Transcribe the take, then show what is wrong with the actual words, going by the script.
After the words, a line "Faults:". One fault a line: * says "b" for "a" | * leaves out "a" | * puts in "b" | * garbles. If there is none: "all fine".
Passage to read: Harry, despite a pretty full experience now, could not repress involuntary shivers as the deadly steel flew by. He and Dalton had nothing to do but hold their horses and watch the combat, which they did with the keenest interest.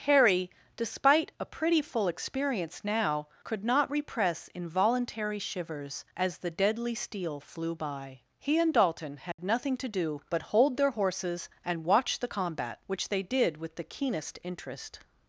Harry, despite a pretty full experience now, could not repress involuntary shivers as the deadly steel flew by. He and Dalton had nothing to do but hold their horses and watch the combat, which they did with the keenest interest.
Faults:
all fine